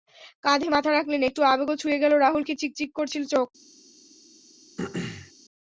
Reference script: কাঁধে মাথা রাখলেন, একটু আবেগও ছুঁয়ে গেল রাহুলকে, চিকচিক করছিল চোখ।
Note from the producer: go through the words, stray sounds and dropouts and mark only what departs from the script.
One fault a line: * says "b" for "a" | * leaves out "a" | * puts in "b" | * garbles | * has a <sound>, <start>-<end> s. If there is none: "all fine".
* has a throat clearing, 4.8-5.3 s